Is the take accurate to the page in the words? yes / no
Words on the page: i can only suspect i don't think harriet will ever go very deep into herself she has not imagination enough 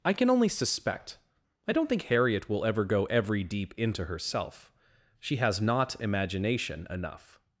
no